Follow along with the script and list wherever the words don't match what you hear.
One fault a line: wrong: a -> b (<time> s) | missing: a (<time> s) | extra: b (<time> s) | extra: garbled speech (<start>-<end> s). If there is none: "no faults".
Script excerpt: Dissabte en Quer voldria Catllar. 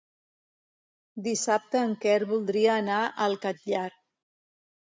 extra: anar al (2.8 s)